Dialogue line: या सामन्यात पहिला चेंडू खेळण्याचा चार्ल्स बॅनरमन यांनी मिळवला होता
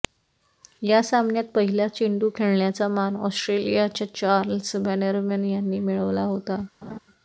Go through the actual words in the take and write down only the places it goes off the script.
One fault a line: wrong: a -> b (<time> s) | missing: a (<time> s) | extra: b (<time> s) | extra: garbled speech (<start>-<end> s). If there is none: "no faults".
extra: मान ऑस्ट्रेलियाच्या (2.9 s)